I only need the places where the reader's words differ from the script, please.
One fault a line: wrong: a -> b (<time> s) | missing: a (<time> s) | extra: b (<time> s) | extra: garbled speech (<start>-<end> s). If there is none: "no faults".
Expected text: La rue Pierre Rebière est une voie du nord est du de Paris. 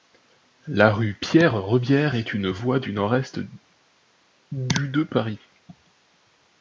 no faults